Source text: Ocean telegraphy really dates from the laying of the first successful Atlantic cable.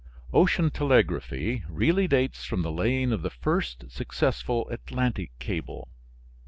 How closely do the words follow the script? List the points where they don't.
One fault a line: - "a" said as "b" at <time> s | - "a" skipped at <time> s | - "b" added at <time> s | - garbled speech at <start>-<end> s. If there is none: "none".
none